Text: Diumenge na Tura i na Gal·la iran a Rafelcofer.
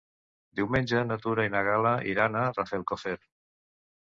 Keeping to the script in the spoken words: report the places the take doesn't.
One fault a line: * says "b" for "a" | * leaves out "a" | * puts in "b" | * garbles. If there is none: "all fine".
all fine